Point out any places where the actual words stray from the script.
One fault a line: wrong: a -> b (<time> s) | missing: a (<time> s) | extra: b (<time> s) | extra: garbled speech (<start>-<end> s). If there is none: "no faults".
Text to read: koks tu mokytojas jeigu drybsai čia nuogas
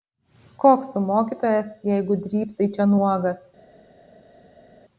no faults